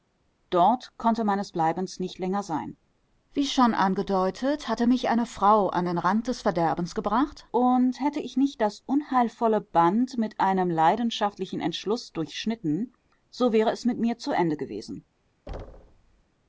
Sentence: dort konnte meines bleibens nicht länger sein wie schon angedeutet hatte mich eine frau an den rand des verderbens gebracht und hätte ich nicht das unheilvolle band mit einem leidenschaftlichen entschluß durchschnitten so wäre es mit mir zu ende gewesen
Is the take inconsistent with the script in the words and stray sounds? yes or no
yes